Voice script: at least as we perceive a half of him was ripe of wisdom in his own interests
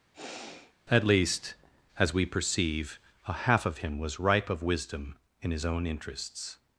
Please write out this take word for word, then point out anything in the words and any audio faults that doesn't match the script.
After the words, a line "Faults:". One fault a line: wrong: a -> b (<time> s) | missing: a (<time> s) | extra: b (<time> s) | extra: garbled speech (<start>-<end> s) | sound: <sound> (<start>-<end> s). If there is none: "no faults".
at least as we perceive a half of him was ripe of wisdom in his own interests
Faults:
sound: sigh (0.1-0.7 s)